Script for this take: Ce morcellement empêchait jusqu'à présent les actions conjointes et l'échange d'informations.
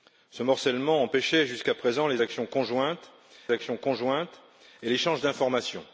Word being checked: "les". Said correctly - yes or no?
yes